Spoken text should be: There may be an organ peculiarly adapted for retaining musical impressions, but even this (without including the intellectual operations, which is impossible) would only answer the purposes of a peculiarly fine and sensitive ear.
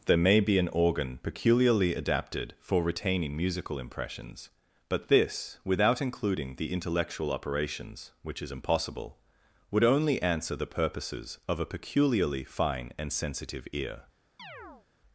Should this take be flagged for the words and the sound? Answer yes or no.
yes